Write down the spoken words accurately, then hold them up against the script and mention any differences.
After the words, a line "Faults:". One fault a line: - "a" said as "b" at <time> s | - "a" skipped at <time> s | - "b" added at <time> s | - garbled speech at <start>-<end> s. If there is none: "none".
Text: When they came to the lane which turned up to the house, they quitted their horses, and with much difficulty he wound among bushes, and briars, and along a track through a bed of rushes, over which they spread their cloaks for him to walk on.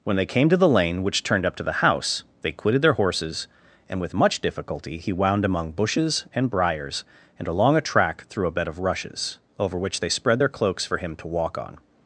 When they came to the lane which turned up to the house, they quitted their horses, and with much difficulty he wound among bushes, and briars, and along a track through a bed of rushes, over which they spread their cloaks for him to walk on.
Faults:
none